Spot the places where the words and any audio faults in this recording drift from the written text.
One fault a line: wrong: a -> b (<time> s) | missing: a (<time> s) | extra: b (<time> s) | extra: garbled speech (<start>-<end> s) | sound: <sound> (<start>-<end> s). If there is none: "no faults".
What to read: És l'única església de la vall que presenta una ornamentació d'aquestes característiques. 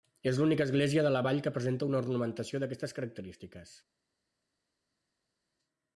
no faults